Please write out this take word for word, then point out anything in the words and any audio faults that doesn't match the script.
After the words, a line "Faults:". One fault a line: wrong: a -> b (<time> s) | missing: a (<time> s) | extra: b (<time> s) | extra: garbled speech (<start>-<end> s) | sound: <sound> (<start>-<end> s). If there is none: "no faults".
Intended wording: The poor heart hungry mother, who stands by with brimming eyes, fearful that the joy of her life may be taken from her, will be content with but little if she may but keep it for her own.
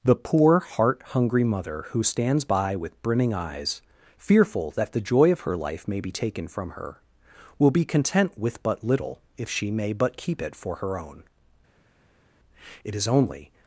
The poor heart hungry mother, who stands by with brimming eyes, fearful that the joy of her life may be taken from her, will be content with but little if she may but keep it for her own. It is only
Faults:
extra: It is only (12.8 s)